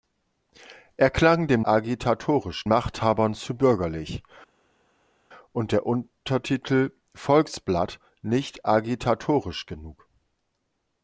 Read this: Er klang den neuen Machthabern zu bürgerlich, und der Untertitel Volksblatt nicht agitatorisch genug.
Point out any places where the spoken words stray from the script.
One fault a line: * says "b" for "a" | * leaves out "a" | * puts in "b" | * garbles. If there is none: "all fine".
* says "agitatorisch" for "neuen"